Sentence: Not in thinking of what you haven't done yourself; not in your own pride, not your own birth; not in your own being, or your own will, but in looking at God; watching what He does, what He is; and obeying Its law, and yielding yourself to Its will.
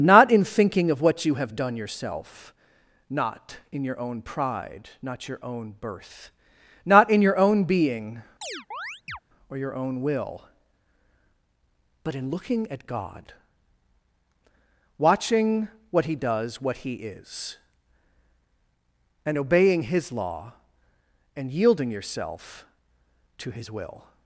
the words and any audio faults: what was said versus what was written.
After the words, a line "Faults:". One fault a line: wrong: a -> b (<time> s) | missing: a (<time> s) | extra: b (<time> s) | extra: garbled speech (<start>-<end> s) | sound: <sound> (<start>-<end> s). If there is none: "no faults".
Not in thinking of what you have done yourself; not in your own pride, not your own birth; not in your own being, or your own will, but in looking at God; watching what He does, what He is; and obeying His law, and yielding yourself to His will.
Faults:
wrong: haven't -> have (1.4 s)
sound: chirp (8.4-9.2 s)
wrong: Its -> His (19.8 s)
wrong: Its -> His (23.5 s)